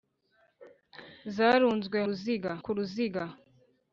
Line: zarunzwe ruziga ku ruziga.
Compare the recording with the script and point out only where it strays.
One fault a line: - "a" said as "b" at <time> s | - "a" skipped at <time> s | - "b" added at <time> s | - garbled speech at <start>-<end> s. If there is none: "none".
none